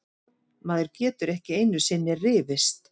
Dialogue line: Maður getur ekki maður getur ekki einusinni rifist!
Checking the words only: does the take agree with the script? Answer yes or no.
no